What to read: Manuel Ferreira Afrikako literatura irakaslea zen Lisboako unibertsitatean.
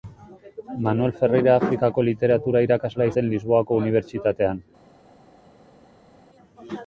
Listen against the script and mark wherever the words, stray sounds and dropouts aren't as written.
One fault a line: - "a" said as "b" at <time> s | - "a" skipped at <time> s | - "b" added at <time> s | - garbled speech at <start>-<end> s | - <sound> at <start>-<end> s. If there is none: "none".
none